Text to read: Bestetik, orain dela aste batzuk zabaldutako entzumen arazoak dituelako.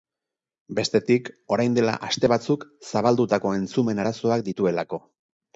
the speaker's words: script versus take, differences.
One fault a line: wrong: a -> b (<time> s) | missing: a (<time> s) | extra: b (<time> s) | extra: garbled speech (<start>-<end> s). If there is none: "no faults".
no faults